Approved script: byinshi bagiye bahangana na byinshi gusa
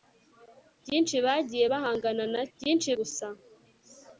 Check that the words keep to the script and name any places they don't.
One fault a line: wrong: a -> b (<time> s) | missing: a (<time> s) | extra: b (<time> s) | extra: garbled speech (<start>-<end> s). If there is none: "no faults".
no faults